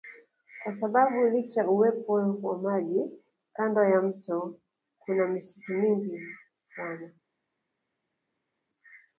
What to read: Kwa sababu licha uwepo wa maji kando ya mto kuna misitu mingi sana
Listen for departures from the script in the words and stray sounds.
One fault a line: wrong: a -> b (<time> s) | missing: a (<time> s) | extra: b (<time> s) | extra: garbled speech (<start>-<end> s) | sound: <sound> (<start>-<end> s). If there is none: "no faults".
no faults